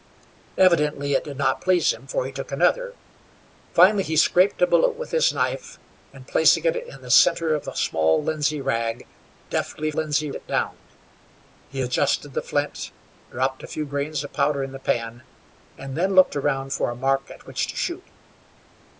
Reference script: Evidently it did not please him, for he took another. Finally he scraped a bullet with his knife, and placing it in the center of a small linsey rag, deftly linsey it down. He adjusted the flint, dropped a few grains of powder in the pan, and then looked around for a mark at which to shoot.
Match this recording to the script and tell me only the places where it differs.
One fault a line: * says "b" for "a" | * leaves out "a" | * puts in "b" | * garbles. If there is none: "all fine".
all fine